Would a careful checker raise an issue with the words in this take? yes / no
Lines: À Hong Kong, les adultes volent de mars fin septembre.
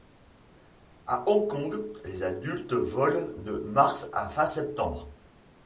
yes